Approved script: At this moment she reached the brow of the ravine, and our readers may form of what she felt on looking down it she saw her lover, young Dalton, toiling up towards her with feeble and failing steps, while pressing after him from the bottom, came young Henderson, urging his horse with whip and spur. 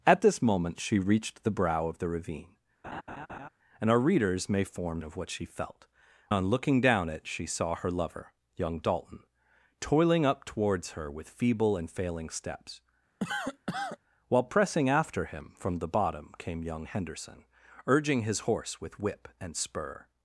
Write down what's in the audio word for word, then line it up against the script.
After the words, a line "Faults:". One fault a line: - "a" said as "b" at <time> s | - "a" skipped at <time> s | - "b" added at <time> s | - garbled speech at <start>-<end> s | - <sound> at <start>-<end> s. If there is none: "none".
At this moment she reached the brow of the ravine, and our readers may form of what she felt on looking down it she saw her lover, young Dalton, toiling up towards her with feeble and failing steps, while pressing after him from the bottom, came young Henderson, urging his horse with whip and spur.
Faults:
- laugh at 2.8-3.5 s
- cough at 13.2-14.0 s